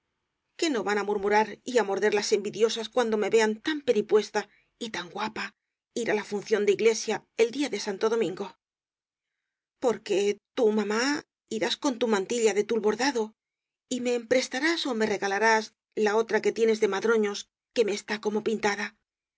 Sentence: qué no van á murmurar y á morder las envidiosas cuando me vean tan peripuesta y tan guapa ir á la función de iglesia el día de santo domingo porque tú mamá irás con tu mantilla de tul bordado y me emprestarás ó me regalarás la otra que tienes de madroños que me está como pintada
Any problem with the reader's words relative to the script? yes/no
no